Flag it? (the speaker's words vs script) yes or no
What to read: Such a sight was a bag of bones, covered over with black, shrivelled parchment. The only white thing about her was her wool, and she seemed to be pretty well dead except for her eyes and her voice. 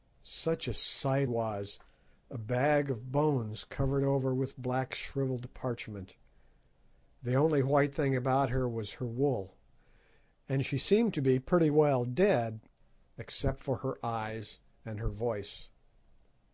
no